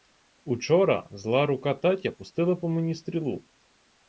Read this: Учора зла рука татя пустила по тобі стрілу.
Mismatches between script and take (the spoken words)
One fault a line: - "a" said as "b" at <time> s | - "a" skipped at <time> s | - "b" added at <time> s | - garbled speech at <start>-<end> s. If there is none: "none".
- "тобі" said as "мені" at 2.7 s